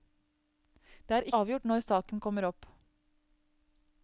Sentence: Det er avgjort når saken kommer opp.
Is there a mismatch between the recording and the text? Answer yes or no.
no